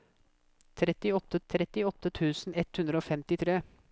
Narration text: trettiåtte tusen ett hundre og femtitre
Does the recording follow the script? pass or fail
fail